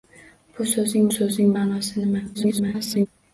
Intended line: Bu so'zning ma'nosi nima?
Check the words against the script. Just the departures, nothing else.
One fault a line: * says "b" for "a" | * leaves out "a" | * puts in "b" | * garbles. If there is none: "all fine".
* puts in "so'zning"
* garbles